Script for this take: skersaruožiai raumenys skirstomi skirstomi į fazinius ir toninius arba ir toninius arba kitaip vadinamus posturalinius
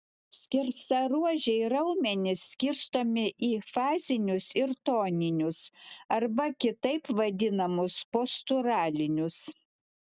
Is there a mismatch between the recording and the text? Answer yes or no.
yes